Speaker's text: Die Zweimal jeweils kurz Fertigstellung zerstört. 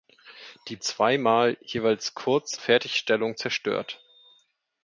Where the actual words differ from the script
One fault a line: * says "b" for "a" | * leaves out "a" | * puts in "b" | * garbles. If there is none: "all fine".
all fine